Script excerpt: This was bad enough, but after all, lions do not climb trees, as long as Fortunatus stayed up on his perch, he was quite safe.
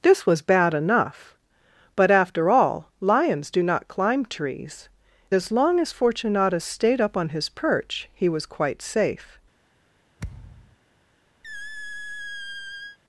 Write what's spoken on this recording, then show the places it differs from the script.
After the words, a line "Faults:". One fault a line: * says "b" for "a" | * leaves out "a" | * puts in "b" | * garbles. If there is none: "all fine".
This was bad enough, but after all, lions do not climb trees, as long as Fortunatus stayed up on his perch, he was quite safe.
Faults:
all fine